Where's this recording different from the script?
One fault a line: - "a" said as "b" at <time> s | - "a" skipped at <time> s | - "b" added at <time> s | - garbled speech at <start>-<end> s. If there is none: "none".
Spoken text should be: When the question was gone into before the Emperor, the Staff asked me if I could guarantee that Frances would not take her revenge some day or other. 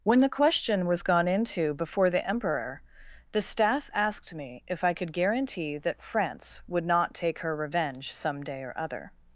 - "Frances" said as "France" at 6.0 s